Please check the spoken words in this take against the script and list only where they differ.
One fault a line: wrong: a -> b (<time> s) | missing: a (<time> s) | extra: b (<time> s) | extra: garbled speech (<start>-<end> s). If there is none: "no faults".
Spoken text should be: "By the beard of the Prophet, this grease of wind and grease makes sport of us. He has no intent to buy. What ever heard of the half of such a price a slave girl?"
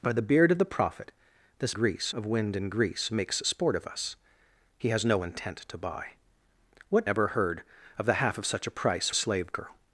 no faults